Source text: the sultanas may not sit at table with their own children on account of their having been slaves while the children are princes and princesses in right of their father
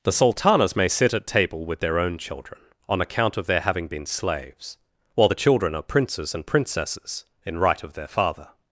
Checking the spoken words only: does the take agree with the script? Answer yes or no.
no